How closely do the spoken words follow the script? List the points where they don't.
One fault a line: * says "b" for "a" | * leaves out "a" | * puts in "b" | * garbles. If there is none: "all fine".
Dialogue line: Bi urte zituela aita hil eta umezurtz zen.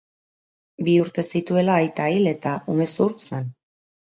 all fine